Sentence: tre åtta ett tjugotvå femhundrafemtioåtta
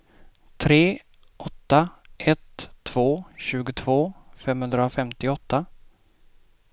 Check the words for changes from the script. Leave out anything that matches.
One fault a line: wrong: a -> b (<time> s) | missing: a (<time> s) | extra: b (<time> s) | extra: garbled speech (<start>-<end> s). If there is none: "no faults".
extra: två (2.8 s)